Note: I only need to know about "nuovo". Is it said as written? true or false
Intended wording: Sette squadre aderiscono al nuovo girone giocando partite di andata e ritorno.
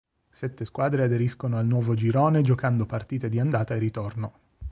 true